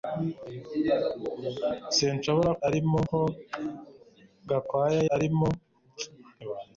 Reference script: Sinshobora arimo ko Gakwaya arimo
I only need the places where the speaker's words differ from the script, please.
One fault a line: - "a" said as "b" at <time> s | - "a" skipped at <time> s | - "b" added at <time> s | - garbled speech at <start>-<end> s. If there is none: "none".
none